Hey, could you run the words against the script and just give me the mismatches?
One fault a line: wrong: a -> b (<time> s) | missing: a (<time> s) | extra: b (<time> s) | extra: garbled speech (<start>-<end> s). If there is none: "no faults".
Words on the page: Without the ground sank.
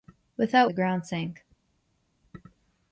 no faults